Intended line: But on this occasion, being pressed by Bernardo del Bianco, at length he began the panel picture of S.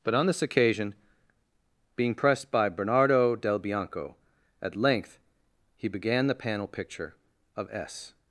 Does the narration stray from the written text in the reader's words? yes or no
no